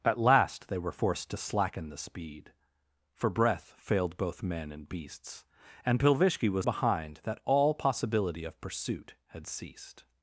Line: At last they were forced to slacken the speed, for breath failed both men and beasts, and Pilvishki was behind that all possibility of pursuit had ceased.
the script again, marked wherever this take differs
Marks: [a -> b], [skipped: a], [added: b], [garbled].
At last they were forced to slacken the speed, for breath failed both men and beasts, and Pilvishki was behind that all possibility of pursuit had ceased.